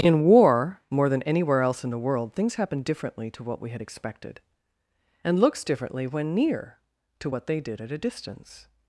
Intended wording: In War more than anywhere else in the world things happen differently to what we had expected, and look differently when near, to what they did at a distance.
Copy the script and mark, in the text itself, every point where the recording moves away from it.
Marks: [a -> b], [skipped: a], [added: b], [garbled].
In War more than anywhere else in the world things happen differently to what we had expected, and [look -> looks] differently when near, to what they did at a distance.